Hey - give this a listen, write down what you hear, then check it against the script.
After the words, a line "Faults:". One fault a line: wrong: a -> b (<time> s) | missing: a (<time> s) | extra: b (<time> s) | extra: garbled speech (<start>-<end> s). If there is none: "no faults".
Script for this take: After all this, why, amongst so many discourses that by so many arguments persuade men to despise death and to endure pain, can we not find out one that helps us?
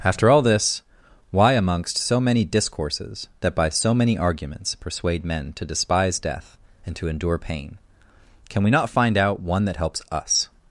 After all this, why, amongst so many discourses that by so many arguments persuade men to despise death and to endure pain, can we not find out one that helps us?
Faults:
no faults